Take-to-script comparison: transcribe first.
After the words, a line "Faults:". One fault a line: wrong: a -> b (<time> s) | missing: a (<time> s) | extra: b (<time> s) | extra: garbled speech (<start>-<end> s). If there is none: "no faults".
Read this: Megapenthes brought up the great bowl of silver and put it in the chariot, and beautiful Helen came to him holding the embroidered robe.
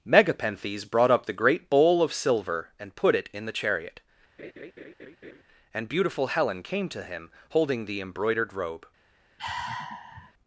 Megapenthes brought up the great bowl of silver and put it in the chariot, and beautiful Helen came to him holding the embroidered robe.
Faults:
no faults